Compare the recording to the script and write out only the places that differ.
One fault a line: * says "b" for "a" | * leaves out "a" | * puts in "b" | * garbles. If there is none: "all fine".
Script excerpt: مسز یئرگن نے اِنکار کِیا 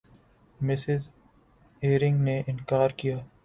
all fine